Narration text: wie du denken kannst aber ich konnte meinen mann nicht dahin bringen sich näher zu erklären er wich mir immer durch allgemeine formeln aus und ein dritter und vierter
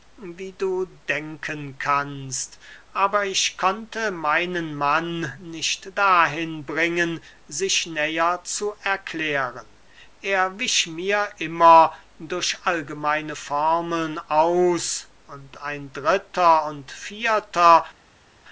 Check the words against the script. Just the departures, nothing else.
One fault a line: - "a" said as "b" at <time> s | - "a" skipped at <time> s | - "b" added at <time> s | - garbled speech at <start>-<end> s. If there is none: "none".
none